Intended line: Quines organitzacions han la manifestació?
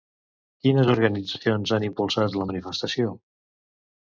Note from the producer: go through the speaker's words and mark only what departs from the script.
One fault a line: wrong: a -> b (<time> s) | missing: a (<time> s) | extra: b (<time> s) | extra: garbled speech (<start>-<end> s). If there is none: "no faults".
extra: impulsat (1.9 s)